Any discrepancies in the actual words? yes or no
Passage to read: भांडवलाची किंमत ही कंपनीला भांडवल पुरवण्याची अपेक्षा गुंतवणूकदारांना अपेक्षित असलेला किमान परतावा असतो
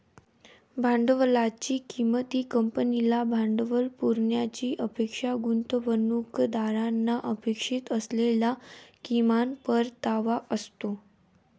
no